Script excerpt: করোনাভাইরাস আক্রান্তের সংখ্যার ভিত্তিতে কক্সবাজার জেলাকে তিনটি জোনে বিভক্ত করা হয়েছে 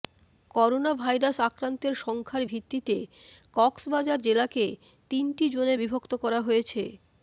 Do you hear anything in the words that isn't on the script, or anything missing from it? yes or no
no